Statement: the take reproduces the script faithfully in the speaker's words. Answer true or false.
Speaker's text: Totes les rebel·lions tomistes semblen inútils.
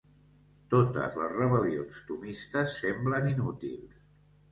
true